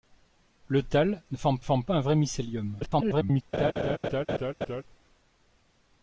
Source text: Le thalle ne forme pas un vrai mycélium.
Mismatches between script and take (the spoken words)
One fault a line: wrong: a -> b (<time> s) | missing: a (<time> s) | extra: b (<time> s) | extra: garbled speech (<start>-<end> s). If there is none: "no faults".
extra: forme (1.6 s)
extra: garbled speech (2.8-3.4 s)